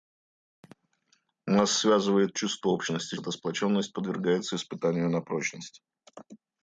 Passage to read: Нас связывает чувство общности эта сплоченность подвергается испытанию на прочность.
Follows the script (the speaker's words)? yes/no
yes